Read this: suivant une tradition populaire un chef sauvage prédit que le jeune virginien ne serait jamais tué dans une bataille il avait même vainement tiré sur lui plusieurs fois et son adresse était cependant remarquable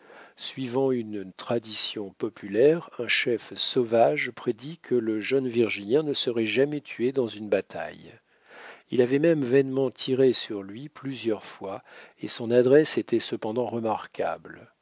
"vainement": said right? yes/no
yes